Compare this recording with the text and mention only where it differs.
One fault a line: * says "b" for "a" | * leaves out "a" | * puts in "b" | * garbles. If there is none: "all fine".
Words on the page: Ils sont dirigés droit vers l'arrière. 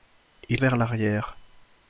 * leaves out "sont dirigés droit"